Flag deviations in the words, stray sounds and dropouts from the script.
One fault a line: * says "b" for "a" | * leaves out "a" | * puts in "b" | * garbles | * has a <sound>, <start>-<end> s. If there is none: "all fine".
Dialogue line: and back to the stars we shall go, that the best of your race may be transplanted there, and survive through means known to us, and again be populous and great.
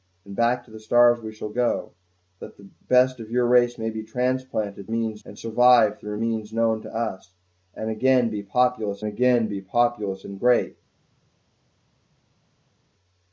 * says "means" for "there"
* puts in "again be populous"